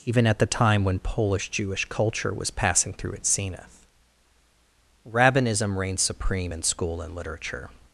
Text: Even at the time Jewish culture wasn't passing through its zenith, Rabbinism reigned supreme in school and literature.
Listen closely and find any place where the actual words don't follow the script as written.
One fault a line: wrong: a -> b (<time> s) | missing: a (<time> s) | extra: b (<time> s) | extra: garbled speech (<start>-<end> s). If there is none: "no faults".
extra: when Polish (0.8 s)
wrong: wasn't -> was (2.3 s)